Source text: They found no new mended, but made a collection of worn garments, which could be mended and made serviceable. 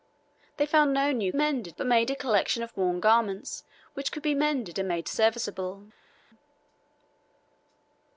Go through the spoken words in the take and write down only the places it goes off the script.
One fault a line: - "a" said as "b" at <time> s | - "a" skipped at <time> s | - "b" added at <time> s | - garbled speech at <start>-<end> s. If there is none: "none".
none